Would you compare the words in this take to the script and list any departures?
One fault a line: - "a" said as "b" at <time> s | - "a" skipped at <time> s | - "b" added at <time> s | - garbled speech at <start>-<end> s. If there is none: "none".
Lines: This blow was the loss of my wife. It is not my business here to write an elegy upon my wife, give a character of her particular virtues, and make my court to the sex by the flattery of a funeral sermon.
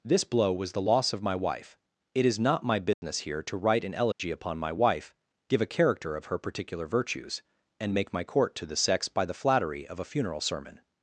none